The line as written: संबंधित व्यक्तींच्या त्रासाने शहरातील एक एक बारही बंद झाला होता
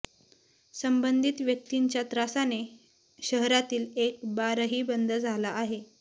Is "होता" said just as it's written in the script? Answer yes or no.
no